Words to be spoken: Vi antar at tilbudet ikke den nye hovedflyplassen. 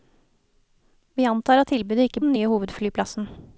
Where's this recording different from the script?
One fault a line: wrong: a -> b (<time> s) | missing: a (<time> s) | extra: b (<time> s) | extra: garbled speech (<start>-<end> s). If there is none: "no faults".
no faults